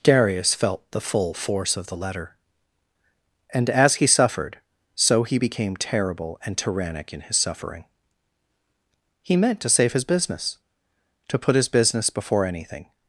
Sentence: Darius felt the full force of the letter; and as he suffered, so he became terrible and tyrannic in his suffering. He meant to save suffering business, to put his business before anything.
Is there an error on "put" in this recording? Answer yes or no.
no